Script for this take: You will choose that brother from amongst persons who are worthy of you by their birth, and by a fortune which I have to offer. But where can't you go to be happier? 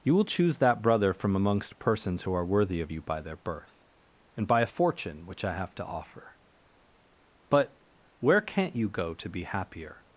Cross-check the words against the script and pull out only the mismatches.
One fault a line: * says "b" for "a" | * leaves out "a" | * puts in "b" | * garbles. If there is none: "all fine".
all fine